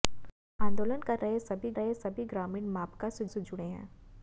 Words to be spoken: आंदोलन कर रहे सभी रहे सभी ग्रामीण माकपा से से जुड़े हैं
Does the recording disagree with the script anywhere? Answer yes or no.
no